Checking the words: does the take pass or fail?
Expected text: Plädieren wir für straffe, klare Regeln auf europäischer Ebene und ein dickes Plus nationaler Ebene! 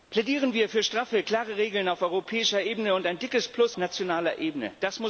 pass